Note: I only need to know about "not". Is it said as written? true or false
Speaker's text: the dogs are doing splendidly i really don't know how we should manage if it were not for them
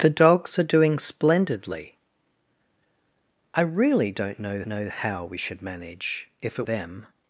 false